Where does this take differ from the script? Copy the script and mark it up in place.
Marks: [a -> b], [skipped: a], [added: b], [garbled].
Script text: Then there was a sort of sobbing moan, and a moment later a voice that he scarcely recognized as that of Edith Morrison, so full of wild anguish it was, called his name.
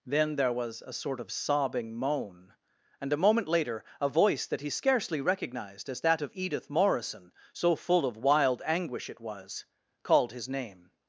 Then there was a sort of sobbing moan, and a moment later a voice that he scarcely recognized as that of Edith Morrison, so full of wild anguish it was, called his name.